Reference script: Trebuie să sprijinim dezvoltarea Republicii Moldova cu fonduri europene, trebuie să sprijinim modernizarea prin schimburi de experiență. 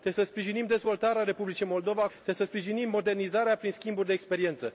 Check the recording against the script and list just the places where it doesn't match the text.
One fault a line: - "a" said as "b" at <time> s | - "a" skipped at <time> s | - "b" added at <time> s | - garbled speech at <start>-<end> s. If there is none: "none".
- "cu fonduri europene" skipped at 2.1 s